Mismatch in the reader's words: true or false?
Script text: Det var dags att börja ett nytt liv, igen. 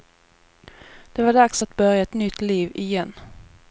false